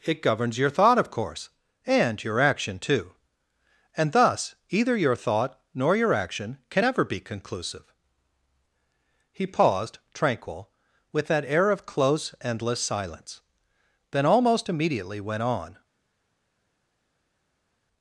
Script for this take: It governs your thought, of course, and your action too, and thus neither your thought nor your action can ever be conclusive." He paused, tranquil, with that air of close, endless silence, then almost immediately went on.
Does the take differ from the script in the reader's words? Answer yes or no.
yes